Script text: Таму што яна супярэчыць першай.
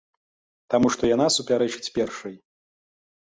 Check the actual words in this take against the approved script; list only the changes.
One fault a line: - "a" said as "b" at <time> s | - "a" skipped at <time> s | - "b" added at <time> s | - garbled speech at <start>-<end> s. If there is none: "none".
none